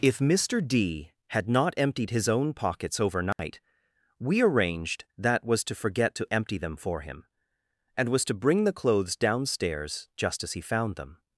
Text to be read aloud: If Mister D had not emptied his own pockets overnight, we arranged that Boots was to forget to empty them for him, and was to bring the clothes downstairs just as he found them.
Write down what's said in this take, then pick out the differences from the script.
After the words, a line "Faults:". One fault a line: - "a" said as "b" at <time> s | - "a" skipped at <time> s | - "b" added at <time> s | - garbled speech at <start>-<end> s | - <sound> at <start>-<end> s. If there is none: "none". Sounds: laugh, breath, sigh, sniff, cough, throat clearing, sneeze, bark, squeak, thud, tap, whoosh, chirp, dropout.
If Mister D had not emptied his own pockets overnight, we arranged that was to forget to empty them for him, and was to bring the clothes downstairs just as he found them.
Faults:
- dropout at 3.3-3.4 s
- "Boots" skipped at 5.5 s